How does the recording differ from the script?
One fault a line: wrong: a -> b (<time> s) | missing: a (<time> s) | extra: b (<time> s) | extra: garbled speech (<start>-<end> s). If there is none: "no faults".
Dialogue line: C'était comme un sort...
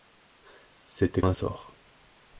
missing: comme (1.2 s)